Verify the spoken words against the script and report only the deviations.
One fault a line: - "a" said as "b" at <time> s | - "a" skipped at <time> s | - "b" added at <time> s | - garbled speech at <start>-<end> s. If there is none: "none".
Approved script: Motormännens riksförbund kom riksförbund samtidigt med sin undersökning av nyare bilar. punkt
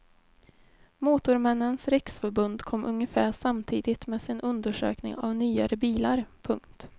- "riksförbund" said as "ungefär" at 2.9 s